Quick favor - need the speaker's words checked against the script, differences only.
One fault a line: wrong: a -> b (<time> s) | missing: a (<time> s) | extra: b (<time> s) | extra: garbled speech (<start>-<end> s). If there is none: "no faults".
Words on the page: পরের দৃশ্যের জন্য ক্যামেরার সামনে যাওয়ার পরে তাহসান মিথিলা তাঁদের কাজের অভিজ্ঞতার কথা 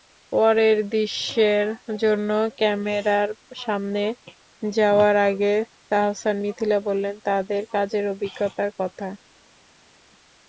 wrong: পরে -> আগে (5.3 s)
extra: বললেন (6.9 s)